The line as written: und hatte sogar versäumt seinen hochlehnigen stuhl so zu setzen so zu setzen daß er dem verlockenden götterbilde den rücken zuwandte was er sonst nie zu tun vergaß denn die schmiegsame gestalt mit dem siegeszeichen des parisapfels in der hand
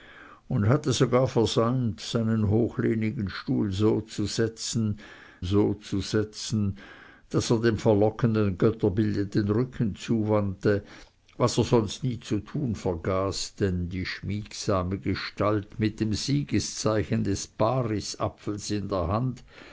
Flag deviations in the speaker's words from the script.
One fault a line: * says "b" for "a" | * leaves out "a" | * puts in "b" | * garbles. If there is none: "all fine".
all fine